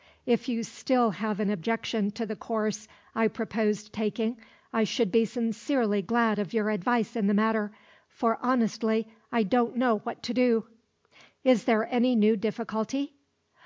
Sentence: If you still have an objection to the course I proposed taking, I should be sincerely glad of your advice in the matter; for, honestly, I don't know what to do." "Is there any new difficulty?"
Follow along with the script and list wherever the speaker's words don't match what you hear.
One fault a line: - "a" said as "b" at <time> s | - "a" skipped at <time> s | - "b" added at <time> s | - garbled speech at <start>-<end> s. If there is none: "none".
none